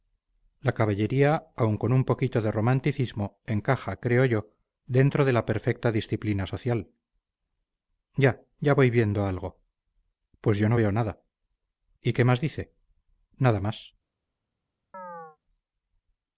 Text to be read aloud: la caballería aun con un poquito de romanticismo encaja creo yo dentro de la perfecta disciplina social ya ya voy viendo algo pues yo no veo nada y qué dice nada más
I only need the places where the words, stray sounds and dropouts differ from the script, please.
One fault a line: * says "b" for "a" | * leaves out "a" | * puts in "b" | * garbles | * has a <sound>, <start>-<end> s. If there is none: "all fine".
* puts in "más"
* has a chirp, 14.9-15.4 s